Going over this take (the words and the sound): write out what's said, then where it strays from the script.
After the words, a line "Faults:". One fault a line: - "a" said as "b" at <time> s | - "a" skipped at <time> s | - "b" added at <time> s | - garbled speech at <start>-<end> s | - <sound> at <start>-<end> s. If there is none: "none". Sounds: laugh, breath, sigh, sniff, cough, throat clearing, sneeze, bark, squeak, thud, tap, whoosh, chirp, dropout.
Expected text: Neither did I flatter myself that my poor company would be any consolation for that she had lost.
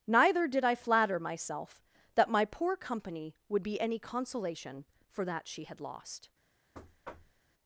Neither did I flatter myself that my poor company would be any consolation for that she had lost.
Faults:
- thud at 6.7-7.4 s